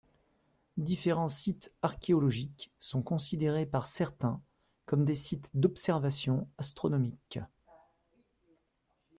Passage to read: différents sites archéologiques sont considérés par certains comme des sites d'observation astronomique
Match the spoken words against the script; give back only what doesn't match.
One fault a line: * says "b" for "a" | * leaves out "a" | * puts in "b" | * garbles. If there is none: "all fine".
all fine